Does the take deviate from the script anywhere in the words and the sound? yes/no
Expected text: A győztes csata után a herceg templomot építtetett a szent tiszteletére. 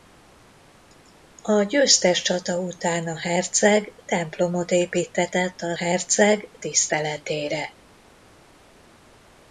yes